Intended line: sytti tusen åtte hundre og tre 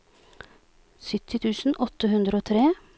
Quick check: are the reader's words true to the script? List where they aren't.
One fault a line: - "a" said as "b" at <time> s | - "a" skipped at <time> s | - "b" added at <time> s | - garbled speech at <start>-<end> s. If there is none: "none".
none